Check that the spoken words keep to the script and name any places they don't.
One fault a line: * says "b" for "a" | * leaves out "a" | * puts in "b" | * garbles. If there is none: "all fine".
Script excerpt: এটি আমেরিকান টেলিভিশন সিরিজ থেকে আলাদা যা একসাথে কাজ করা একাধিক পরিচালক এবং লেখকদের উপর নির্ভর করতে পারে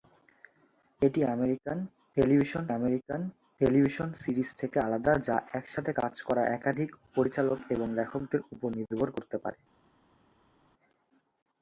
* puts in "আমেরিকান টেলিভিশন"